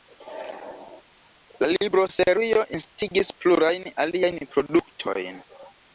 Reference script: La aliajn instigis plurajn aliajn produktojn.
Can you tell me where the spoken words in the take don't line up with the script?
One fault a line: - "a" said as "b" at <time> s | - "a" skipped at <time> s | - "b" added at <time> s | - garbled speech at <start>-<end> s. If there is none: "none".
- "aliajn" said as "libroserio" at 1.7 s